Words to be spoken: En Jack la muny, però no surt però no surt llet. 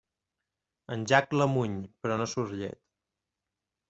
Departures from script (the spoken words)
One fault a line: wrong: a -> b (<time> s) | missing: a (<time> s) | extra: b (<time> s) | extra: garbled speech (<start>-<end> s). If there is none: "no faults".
missing: però no surt (2.6 s)